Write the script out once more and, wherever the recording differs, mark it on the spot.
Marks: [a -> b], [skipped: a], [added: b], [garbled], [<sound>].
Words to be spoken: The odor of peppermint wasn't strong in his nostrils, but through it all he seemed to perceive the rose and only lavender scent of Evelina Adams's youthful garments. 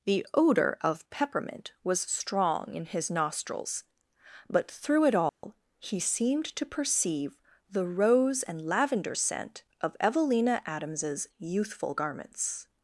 The odor of peppermint [wasn't -> was] strong in his nostrils, but through it all [dropout] he seemed to perceive the rose and [skipped: only] lavender scent of Evelina Adams's youthful garments.